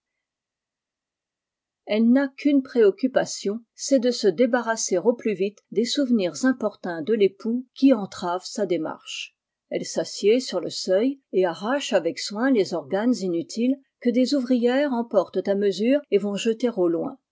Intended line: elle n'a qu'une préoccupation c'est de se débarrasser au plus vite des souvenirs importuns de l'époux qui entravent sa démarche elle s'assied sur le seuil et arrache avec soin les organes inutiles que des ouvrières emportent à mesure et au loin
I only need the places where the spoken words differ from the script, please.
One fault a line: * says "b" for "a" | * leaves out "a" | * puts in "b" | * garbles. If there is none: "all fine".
* puts in "vont jeter"